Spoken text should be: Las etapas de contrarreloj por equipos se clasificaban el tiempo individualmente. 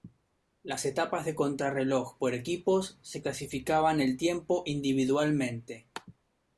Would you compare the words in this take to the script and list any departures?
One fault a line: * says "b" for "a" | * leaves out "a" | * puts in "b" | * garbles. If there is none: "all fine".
all fine